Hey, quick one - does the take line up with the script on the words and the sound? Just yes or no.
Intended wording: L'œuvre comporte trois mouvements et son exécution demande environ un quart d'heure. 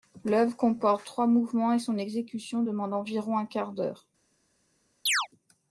no